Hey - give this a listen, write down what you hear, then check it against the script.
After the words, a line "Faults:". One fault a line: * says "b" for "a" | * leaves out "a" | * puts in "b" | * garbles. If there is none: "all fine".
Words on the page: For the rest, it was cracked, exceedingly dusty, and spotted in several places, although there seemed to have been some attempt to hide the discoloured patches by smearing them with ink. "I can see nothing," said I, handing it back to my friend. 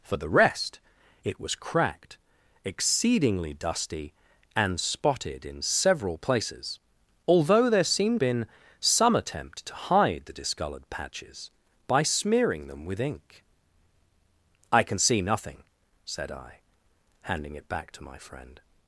For the rest, it was cracked, exceedingly dusty, and spotted in several places, although there seemed been some attempt to hide the discoloured patches by smearing them with ink. "I can see nothing," said I, handing it back to my friend.
Faults:
* leaves out "to have"